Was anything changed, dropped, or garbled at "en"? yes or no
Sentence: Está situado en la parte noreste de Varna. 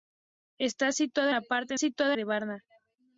yes